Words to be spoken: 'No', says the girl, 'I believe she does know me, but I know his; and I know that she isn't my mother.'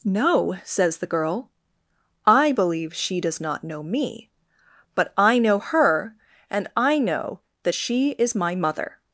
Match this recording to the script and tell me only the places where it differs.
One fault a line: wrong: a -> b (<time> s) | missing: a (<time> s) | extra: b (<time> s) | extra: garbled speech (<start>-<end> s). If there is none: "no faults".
extra: not (3.4 s)
wrong: his -> her (5.6 s)
wrong: isn't -> is (8.1 s)